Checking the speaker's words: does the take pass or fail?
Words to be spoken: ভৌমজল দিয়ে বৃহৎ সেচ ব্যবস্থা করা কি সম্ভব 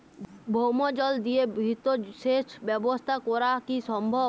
pass